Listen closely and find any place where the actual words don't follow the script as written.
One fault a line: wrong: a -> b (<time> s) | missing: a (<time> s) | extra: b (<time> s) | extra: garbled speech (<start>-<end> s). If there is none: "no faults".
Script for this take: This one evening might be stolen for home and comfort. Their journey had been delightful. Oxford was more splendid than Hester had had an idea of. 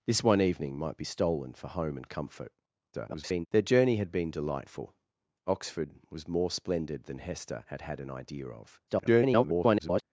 extra: garbled speech (2.9-3.5 s)
extra: garbled speech (8.9-10.0 s)